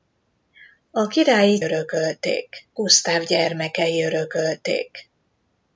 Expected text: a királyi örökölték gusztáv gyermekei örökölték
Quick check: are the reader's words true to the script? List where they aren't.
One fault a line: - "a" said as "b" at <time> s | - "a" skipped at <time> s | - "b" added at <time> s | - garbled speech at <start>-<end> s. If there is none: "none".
none